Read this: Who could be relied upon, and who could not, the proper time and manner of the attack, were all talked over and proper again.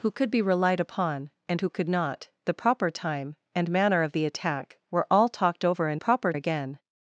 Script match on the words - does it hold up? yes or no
yes